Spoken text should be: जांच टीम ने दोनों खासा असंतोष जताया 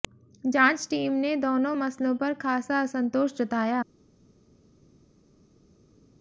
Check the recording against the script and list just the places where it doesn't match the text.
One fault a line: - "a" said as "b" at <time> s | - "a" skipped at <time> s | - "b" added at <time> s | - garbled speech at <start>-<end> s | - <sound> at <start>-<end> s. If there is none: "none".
- "मसलों पर" added at 1.7 s